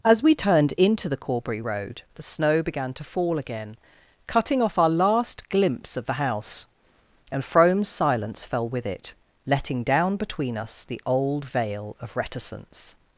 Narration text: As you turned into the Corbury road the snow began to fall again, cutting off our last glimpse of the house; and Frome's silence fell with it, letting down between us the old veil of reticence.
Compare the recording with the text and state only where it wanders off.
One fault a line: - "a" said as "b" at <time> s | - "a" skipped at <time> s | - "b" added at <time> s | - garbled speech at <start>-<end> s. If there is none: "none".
- "you" said as "we" at 0.2 s